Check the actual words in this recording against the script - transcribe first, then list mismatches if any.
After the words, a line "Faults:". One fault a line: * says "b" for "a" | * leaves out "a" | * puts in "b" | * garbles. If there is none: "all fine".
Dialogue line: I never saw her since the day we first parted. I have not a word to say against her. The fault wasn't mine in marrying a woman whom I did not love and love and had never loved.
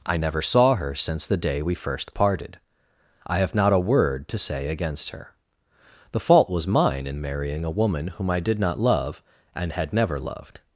I never saw her since the day we first parted. I have not a word to say against her. The fault was mine in marrying a woman whom I did not love and had never loved.
Faults:
* says "was" for "wasn't"
* leaves out "love and"